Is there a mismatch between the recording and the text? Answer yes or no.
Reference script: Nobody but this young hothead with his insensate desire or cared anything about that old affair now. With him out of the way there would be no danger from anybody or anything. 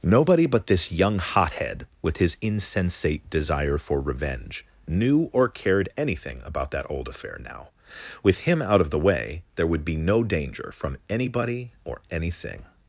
yes